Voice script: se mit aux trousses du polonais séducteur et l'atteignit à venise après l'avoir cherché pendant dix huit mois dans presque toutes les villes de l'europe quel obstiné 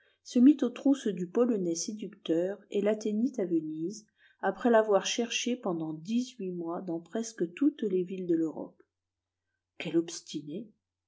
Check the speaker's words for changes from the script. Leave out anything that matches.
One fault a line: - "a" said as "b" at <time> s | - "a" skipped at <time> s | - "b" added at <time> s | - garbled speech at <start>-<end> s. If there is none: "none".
none